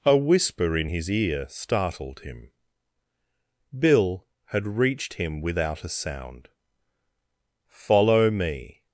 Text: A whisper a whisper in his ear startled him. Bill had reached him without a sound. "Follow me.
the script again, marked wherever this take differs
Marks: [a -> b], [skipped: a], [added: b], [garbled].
A whisper [skipped: a whisper] in his ear startled him. Bill had reached him without a sound. "Follow me.